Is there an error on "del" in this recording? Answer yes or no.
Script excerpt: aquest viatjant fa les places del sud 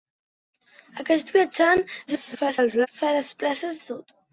yes